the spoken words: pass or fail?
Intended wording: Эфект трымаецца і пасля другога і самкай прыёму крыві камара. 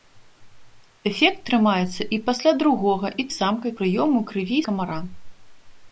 pass